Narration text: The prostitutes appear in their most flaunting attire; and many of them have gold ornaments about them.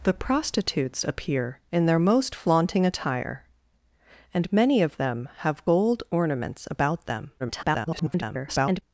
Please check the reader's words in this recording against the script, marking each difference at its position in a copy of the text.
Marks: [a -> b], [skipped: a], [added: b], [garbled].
The prostitutes appear in their most flaunting attire; and many of them have gold ornaments about them. [garbled]